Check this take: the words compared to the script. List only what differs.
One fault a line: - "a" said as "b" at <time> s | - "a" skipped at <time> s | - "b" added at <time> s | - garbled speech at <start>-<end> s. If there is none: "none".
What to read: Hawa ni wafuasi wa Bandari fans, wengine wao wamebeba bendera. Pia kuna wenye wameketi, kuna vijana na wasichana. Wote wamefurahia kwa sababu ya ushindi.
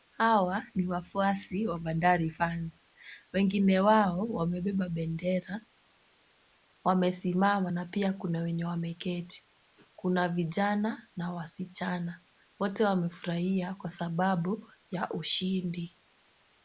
- "Wamesimama na" added at 6.8 s